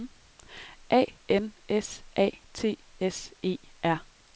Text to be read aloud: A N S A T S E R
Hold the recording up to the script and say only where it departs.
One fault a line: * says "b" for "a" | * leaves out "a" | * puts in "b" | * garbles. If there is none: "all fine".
all fine